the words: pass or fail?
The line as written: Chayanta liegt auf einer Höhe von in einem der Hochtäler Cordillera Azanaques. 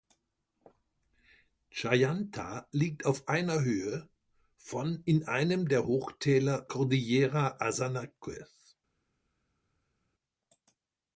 pass